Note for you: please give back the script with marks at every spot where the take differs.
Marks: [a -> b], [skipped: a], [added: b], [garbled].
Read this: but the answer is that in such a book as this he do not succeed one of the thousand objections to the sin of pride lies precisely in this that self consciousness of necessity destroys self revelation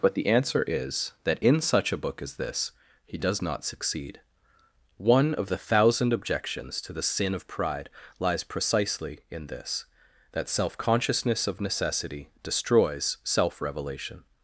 but the answer is that in such a book as this he [do -> does] not succeed one of the thousand objections to the sin of pride lies precisely in this that self consciousness of necessity destroys self revelation